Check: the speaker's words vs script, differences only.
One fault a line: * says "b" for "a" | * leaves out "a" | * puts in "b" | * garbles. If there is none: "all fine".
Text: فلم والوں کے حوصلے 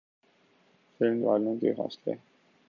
all fine